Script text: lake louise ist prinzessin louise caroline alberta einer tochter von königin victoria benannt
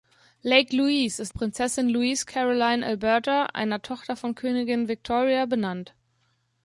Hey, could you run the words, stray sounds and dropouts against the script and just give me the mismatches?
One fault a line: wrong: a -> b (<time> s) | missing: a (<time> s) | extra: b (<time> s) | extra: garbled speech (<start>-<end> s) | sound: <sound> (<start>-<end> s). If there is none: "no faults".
no faults